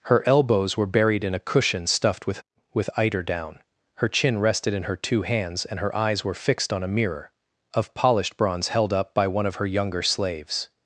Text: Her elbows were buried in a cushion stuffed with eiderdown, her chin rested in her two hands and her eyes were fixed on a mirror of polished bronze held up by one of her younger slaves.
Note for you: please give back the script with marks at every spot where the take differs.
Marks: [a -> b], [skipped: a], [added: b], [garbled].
Her elbows were buried in a cushion stuffed with [added: with] eiderdown, her chin rested in her two hands and her eyes were fixed on a mirror of polished bronze held up by one of her younger slaves.